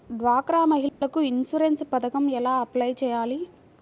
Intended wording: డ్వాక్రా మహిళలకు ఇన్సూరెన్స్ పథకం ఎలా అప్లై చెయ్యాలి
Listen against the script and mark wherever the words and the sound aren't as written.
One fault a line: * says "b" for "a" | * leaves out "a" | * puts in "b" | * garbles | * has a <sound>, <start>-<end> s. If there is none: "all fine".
* has a dropout, 0.9-1.0 s